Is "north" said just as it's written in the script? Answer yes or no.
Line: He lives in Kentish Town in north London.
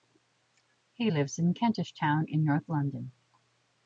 yes